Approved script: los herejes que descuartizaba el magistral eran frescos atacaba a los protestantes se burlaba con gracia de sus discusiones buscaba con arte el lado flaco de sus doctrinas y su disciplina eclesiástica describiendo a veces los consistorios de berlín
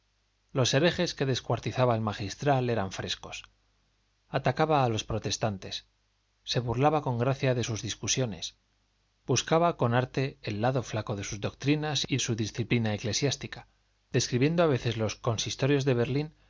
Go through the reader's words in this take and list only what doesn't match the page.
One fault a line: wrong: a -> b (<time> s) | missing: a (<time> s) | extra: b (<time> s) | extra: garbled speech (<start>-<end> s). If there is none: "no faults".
no faults